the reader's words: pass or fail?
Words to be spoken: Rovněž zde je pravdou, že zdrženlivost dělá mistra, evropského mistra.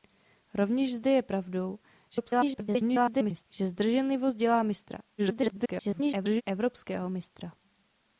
fail